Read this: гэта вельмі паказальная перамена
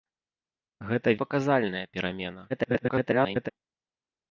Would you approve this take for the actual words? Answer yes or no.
no